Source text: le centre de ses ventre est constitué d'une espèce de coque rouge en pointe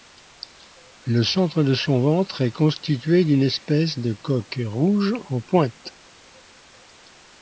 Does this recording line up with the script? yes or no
no